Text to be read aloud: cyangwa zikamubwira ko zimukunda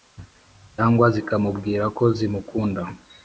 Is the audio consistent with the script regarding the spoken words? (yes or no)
yes